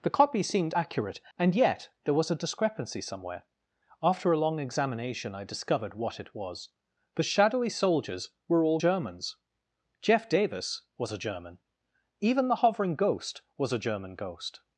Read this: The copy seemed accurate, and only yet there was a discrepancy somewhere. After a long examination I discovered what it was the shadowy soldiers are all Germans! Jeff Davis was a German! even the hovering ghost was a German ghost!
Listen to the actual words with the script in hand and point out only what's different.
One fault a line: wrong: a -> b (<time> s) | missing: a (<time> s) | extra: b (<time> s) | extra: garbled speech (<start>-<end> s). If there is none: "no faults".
missing: only (1.5 s)
wrong: are -> were (8.5 s)